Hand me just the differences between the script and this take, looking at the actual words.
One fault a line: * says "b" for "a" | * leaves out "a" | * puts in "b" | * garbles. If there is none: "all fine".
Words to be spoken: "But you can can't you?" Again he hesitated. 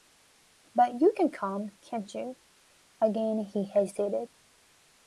* puts in "come"